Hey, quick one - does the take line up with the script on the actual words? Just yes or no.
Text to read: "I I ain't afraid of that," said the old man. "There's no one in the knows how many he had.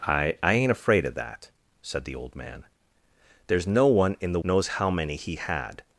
yes